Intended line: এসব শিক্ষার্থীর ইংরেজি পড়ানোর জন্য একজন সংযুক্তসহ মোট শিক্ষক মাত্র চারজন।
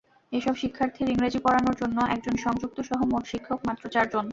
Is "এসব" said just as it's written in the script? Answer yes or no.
yes